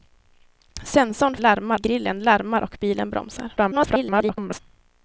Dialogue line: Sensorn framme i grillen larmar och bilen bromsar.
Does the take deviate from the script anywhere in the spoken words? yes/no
yes